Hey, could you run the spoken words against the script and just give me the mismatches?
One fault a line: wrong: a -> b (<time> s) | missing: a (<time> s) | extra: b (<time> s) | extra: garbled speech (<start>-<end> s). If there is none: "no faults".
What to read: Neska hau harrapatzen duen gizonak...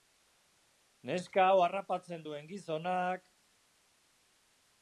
no faults